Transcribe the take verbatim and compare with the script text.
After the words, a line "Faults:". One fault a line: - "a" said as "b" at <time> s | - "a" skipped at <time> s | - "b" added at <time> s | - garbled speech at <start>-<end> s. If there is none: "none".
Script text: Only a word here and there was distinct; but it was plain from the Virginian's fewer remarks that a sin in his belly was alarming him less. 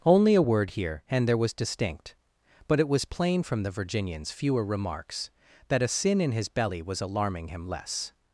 Only a word here and there was distinct; but it was plain from the Virginian's fewer remarks that a sin in his belly was alarming him less.
Faults:
none